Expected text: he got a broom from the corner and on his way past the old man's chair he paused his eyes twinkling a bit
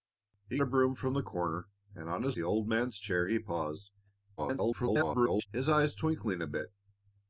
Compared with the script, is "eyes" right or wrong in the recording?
right